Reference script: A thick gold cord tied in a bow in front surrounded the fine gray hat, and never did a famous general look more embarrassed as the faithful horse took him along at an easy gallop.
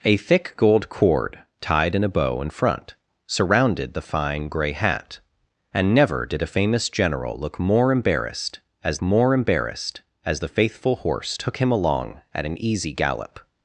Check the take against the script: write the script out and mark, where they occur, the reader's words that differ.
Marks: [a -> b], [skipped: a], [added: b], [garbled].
A thick gold cord tied in a bow in front surrounded the fine gray hat, and never did a famous general look more embarrassed as [added: more embarrassed as] the faithful horse took him along at an easy gallop.